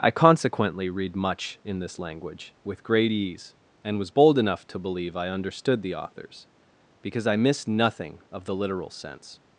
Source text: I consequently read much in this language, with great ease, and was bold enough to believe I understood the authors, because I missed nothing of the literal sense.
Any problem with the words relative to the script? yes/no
no